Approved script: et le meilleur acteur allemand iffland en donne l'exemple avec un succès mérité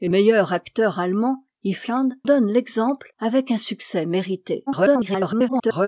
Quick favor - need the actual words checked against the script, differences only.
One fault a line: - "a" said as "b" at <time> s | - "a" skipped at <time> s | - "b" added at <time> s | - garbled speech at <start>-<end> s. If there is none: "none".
- "le" skipped at 0.1 s
- "en" skipped at 2.1 s
- garbled speech at 4.7-5.9 s